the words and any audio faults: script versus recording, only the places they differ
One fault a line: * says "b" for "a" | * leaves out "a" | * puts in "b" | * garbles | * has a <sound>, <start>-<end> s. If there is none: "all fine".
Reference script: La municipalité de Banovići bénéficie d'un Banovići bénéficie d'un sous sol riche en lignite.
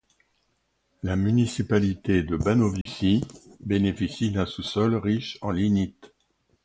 * has a dropout, 2.8-2.9 s
* leaves out "Banovići bénéficie d'un"